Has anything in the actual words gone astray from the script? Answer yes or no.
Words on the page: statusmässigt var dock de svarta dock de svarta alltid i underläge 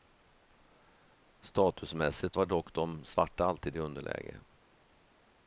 yes